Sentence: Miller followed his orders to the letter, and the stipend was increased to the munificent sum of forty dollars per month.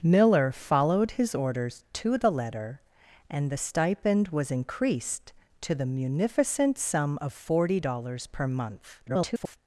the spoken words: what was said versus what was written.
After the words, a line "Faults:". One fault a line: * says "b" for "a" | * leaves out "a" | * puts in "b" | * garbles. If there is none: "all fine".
Miller followed his orders to the letter, and the stipend was increased to the munificent sum of forty dollars per month. [garbled]
Faults:
* garbles